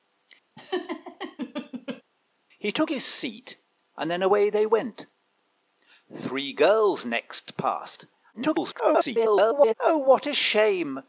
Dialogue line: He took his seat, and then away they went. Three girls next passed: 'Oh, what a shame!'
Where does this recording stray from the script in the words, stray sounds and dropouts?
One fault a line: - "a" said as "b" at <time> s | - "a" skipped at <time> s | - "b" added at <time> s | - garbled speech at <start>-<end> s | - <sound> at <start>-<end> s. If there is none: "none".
- laugh at 0.6-2.0 s
- garbled speech at 8.3-9.7 s